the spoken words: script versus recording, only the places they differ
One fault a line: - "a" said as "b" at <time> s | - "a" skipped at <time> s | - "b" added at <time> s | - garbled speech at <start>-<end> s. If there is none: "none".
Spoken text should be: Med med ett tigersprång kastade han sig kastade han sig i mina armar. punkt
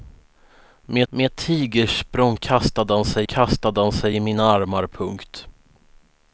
none